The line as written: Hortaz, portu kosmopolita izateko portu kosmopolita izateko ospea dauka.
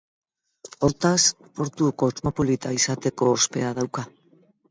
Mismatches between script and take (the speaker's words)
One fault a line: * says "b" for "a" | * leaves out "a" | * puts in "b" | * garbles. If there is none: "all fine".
* leaves out "portu kosmopolita izateko"